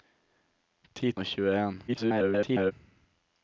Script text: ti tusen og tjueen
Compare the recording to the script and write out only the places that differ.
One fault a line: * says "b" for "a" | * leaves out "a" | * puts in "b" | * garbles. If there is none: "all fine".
* leaves out "tusen"
* garbles